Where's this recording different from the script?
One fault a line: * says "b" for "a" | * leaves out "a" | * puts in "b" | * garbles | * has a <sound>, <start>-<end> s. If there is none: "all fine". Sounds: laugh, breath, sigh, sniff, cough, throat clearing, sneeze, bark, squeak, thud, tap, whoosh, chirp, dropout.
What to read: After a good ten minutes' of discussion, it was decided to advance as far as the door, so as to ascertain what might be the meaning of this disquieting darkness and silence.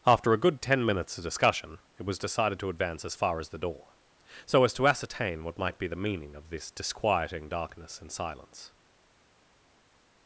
all fine